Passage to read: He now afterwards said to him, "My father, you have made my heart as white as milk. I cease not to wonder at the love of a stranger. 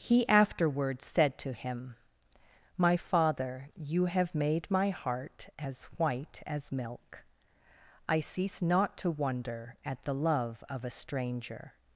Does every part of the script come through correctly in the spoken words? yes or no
no